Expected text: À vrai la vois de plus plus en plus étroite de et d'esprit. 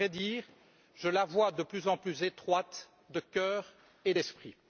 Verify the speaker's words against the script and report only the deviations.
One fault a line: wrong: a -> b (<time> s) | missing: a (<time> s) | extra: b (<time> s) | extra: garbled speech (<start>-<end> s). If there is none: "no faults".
extra: dire je (0.2 s)
missing: plus (1.9 s)
extra: cœur (3.2 s)